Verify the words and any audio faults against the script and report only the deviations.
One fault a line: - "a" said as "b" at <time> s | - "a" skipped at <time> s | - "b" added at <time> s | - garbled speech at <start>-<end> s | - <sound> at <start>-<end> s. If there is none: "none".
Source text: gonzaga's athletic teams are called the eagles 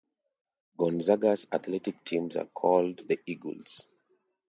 none